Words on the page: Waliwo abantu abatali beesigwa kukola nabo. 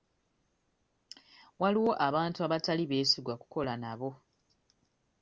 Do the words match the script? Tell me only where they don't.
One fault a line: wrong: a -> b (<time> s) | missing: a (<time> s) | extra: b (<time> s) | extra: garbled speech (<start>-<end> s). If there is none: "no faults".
no faults